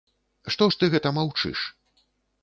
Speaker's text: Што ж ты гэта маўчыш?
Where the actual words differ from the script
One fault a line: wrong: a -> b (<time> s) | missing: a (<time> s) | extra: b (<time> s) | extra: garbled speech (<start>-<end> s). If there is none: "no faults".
no faults